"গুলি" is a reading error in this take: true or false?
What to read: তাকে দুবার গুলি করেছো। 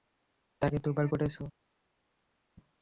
true